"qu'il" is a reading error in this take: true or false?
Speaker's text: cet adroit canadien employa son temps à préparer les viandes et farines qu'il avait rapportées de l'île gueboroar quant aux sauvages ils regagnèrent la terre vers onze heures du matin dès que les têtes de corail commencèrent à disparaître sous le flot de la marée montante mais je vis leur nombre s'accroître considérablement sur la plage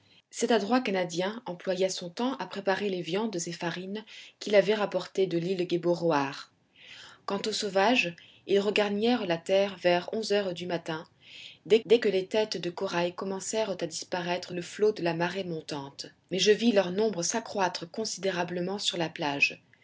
false